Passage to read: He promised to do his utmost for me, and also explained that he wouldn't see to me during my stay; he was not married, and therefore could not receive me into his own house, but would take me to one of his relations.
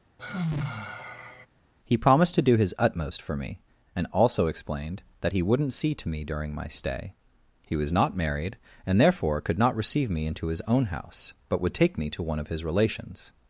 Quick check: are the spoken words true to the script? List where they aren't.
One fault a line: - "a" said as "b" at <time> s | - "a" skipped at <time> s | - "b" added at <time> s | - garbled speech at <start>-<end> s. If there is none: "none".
none